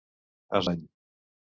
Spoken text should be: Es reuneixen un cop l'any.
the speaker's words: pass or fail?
fail